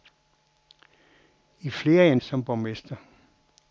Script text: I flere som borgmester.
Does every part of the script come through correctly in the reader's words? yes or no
yes